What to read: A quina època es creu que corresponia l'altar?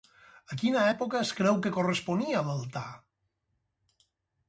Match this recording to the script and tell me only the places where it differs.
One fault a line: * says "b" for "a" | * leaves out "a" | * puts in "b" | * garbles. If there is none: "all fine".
all fine